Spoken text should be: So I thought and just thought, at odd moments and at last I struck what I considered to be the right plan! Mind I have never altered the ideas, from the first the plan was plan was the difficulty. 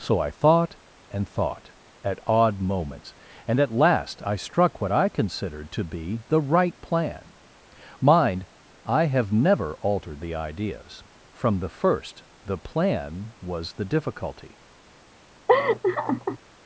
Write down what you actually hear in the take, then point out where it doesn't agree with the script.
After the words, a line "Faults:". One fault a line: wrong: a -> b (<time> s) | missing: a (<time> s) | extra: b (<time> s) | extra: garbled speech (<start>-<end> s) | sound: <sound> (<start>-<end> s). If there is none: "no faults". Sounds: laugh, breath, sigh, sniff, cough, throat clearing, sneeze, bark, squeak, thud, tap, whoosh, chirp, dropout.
So I thought and thought, at odd moments and at last I struck what I considered to be the right plan! Mind I have never altered the ideas, from the first the plan was the difficulty.
Faults:
missing: just (1.3 s)
missing: plan was (13.7 s)
sound: laugh (15.5-16.4 s)